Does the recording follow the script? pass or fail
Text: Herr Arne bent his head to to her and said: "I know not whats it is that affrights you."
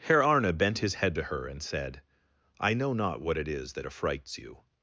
fail